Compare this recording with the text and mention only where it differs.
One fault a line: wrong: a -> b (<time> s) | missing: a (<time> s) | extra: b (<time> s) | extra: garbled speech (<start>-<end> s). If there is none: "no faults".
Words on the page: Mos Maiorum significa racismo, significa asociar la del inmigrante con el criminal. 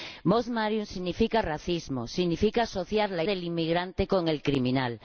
no faults